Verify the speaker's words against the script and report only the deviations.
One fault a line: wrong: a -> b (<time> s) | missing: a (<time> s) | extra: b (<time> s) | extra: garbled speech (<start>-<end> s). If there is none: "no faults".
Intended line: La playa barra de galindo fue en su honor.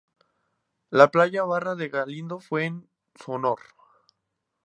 no faults